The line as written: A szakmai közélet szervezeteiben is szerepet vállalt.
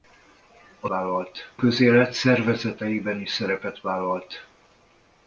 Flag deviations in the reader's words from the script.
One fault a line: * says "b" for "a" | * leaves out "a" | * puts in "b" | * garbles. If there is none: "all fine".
* says "vállalt" for "szakmai"